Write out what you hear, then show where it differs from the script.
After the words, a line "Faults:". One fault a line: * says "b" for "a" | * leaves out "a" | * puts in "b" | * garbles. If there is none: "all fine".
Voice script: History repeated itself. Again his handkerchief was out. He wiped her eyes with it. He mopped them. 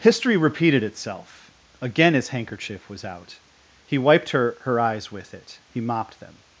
History repeated itself. Again his handkerchief was out. He wiped her her eyes with it. He mopped them.
Faults:
* puts in "her"